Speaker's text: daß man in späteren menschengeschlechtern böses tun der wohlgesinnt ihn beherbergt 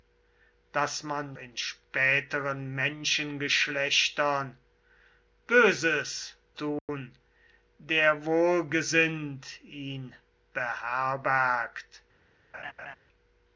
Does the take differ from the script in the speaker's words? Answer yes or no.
no